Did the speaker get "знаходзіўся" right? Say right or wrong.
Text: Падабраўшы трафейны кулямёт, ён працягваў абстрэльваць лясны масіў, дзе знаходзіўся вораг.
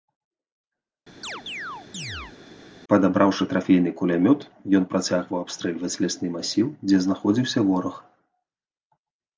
right